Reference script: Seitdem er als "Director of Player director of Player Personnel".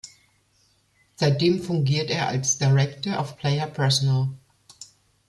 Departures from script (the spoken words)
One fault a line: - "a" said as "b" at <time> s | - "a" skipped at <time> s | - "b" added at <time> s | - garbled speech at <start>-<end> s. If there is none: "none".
- "fungiert" added at 1.6 s
- "director of Player" skipped at 3.7 s